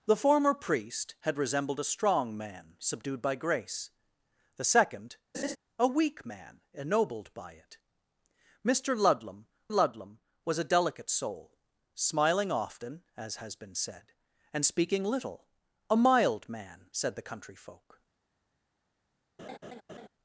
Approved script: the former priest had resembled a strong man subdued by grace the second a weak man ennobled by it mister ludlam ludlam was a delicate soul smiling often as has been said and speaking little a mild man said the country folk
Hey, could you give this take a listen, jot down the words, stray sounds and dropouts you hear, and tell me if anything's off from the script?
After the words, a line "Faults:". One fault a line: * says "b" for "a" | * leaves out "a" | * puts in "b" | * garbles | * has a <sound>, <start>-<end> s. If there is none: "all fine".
the former priest had resembled a strong man subdued by grace the second a weak man ennobled by it mister ludlam ludlam was a delicate soul smiling often as has been said and speaking little a mild man said the country folk
Faults:
* has a laugh, 5.3-5.6 s
* has a laugh, 19.4-20.1 s